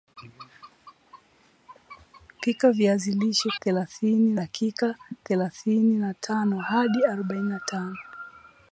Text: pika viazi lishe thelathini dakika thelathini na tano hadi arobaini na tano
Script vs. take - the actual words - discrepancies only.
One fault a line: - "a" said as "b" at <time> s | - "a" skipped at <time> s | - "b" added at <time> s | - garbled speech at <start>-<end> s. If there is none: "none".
none